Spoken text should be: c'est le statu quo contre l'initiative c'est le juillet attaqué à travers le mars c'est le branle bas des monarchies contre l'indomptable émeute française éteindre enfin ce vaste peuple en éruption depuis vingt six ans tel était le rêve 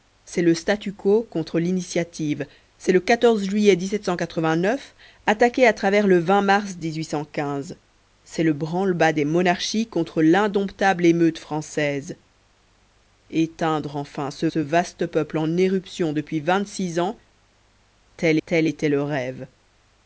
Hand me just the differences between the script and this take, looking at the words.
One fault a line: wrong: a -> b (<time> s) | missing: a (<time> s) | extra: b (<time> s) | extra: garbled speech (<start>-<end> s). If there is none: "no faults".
extra: ce (14.4 s)
extra: tel (18.4 s)